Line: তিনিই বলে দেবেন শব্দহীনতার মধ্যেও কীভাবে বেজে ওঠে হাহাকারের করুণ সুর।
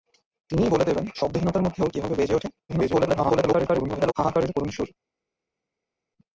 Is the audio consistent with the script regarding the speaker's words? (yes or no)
no